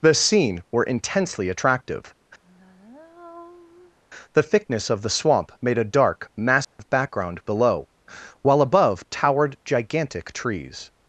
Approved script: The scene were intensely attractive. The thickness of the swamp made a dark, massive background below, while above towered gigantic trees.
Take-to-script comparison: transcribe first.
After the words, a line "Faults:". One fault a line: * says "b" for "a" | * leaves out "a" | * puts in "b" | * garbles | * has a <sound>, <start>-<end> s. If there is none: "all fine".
The scene were intensely attractive. The thickness of the swamp made a dark, massive background below, while above towered gigantic trees.
Faults:
* has a sigh, 2.4-4.0 s
* has a dropout, 6.6-6.8 s